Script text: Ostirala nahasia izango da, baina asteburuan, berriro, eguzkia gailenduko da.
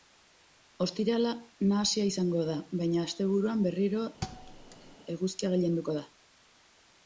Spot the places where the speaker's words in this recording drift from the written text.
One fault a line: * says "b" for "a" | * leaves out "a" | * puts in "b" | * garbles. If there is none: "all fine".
all fine